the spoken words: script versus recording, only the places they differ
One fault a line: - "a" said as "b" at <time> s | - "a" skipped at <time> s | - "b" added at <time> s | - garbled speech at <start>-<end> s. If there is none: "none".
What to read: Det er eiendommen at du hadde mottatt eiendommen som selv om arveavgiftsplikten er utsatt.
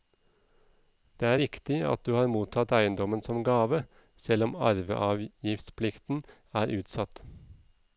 - "eiendommen" said as "riktig" at 1.4 s
- "hadde" said as "har" at 2.2 s
- "gave" added at 3.5 s